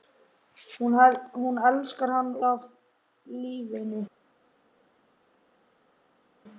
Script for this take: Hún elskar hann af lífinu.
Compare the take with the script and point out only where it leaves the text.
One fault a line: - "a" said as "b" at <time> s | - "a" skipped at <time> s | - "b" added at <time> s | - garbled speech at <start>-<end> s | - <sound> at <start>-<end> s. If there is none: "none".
none